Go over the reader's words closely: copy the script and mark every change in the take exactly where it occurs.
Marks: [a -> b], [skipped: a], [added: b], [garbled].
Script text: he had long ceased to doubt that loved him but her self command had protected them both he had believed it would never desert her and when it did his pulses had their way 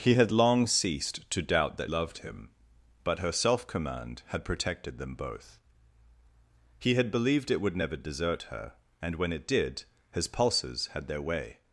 he had long ceased to doubt that loved him but her self command had protected them both he had believed it would never desert her and when it did his pulses had their way